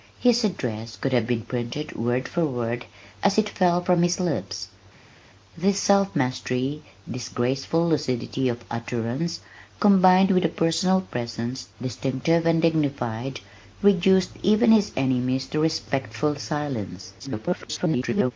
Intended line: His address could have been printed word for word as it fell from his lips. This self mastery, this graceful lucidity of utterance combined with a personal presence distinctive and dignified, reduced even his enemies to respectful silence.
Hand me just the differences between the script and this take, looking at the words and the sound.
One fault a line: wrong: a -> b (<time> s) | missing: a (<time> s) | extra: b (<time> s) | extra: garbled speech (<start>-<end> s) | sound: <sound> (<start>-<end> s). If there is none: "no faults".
extra: garbled speech (17.2-18.3 s)